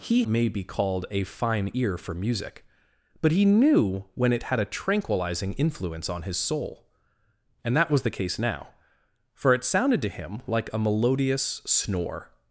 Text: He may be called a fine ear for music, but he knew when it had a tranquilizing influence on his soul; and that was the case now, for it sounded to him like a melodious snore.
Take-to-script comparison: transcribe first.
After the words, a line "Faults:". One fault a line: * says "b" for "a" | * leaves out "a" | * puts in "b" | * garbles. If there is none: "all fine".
He may be called a fine ear for music, but he knew when it had a tranquilizing influence on his soul; and that was the case now, for it sounded to him like a melodious snore.
Faults:
all fine